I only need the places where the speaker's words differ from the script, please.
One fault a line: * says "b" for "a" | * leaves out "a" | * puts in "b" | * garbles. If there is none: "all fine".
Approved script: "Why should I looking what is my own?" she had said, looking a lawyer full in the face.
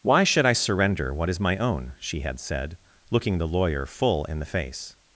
* says "surrender" for "looking"
* says "the" for "a"